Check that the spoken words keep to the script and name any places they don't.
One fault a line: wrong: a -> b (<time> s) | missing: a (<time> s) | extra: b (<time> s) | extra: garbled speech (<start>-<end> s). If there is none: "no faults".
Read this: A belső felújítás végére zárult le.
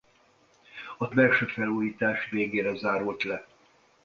no faults